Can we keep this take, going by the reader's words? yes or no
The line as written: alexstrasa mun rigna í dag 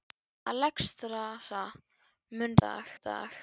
no